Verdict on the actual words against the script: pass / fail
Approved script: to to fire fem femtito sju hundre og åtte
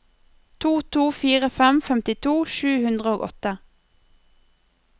pass